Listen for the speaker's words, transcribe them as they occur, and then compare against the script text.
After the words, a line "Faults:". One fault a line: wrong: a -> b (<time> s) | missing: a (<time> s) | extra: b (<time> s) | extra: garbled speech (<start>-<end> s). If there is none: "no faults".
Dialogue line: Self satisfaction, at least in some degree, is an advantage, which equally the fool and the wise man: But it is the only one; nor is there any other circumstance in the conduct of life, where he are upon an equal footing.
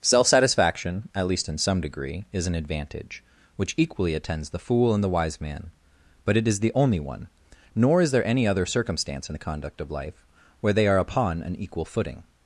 Self satisfaction, at least in some degree, is an advantage, which equally attends the fool and the wise man: But it is the only one; nor is there any other circumstance in the conduct of life, where they are upon an equal footing.
Faults:
extra: attends (4.2 s)
wrong: he -> they (10.7 s)